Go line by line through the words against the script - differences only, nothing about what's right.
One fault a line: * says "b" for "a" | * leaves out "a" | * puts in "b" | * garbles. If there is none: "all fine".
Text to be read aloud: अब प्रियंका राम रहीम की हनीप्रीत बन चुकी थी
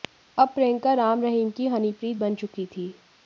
all fine